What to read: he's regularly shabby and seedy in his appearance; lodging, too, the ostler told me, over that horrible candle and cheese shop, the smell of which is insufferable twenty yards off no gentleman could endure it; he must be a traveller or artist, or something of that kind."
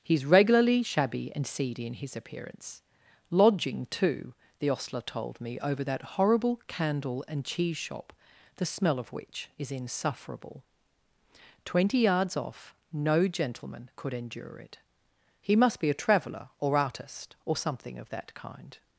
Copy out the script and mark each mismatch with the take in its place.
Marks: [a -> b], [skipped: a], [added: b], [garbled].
he's regularly shabby and seedy in his appearance; lodging, too, the ostler told me, over that horrible candle and cheese shop, the smell of which is insufferable twenty yards off no gentleman could endure it; he must be a traveller or artist, or something of that kind."